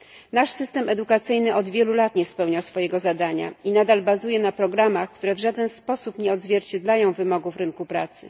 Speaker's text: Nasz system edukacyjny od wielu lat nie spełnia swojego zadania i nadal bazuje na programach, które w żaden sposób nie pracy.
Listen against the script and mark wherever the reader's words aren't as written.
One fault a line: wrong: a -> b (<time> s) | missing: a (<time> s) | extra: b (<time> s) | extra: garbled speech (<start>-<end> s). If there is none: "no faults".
extra: odzwierciedlają wymogów rynku (6.3 s)